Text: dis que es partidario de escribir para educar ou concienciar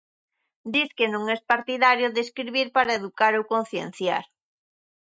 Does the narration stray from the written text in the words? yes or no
yes